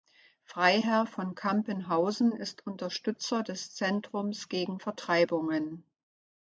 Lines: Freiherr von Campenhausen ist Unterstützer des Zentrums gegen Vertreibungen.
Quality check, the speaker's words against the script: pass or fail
pass